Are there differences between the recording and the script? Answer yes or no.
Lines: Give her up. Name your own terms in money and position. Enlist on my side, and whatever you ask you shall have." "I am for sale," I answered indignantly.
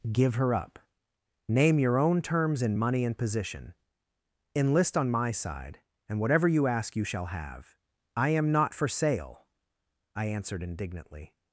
yes